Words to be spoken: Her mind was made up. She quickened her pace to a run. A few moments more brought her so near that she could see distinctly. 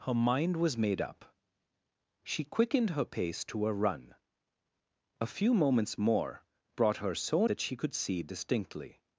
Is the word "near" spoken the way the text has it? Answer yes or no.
no